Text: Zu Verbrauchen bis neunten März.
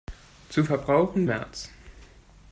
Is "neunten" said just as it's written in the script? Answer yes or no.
no